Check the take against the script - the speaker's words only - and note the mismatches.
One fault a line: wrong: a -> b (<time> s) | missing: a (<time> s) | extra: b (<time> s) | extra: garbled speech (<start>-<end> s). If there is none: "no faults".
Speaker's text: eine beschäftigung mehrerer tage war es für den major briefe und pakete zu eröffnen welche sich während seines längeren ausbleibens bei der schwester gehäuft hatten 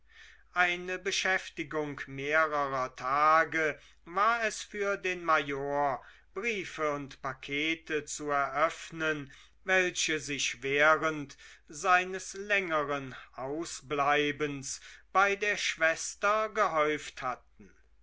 no faults